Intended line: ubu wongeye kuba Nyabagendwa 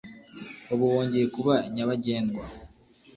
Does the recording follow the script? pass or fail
pass